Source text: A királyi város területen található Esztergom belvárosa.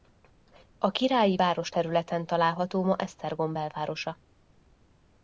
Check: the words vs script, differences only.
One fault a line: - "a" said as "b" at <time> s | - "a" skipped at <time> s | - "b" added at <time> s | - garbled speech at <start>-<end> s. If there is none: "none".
- "ma" added at 2.8 s